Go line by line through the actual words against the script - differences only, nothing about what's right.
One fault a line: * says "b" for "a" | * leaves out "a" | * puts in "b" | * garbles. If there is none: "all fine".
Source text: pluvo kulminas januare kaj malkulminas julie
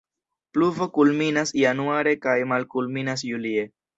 all fine